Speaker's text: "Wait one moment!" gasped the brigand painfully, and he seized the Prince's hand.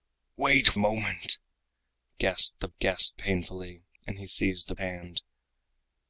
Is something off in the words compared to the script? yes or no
yes